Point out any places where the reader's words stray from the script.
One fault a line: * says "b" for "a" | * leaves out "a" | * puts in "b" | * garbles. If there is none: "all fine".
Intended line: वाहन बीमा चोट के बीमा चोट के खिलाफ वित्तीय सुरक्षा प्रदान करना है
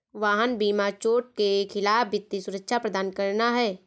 * leaves out "बीमा चोट के"